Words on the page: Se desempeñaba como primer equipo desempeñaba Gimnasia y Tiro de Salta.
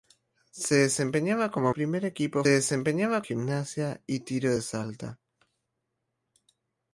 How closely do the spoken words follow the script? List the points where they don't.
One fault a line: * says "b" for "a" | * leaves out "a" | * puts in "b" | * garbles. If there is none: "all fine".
all fine